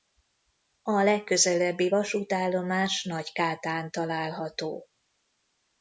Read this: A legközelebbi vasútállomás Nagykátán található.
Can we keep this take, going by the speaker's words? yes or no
yes